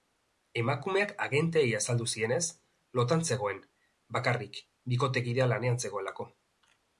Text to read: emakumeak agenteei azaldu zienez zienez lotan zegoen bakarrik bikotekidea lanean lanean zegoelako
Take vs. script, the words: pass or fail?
fail